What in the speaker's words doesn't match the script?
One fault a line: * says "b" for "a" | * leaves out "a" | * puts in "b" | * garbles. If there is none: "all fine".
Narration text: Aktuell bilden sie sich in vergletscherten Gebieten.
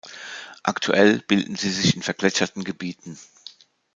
all fine